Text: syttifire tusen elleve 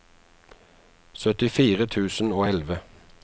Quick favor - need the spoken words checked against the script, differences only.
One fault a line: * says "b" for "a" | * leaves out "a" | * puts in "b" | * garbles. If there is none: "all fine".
* puts in "og"